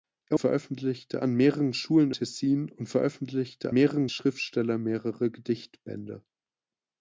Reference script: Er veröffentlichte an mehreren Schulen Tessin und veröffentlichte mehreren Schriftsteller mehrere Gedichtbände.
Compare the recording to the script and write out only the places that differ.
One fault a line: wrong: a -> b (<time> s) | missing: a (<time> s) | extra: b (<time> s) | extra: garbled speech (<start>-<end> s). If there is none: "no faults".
no faults